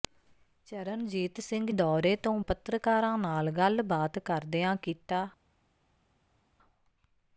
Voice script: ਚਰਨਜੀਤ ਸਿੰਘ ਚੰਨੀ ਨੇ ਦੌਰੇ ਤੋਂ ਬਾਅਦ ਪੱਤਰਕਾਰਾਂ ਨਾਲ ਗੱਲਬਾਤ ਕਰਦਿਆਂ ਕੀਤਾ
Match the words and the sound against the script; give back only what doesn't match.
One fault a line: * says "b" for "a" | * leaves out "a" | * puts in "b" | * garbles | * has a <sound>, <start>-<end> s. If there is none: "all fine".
* leaves out "ਚੰਨੀ ਨੇ"
* leaves out "ਬਾਅਦ"